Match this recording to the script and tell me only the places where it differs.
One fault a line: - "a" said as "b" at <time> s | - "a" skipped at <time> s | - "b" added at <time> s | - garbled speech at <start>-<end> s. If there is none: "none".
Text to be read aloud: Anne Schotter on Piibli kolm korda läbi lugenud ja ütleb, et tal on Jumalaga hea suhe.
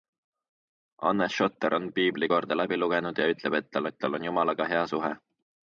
- "kolm" skipped at 2.3 s
- "et tal" added at 3.9 s